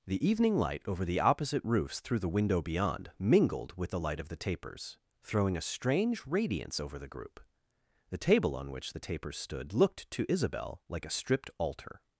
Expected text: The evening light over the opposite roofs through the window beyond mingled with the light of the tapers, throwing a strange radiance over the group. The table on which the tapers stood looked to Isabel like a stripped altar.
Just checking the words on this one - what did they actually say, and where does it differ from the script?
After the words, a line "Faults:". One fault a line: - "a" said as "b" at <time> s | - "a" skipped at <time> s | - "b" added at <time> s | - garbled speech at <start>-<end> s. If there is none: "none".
The evening light over the opposite roofs through the window beyond mingled with the light of the tapers, throwing a strange radiance over the group. The table on which the tapers stood looked to Isabel like a stripped altar.
Faults:
none